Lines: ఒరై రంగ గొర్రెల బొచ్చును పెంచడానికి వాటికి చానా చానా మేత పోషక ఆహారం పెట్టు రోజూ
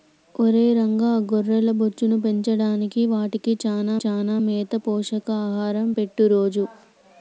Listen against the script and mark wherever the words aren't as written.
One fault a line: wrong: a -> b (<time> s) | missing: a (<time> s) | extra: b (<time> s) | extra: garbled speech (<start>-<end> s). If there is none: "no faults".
no faults